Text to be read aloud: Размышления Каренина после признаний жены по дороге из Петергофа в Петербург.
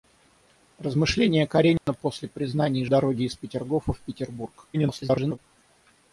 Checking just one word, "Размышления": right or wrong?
right